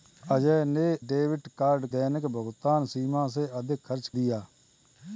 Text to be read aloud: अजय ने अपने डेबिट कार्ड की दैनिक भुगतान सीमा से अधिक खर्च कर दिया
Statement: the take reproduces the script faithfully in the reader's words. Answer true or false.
false